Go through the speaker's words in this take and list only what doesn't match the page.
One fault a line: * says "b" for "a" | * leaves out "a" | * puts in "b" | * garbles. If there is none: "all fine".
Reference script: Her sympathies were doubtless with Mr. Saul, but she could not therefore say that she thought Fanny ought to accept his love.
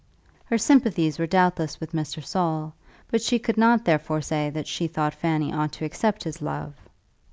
all fine